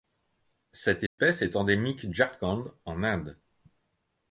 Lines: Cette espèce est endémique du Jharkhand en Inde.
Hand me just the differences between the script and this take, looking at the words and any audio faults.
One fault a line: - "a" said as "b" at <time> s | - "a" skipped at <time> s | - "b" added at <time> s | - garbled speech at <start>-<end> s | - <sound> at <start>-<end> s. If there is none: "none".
- dropout at 1.1-1.2 s
- "du" skipped at 2.1 s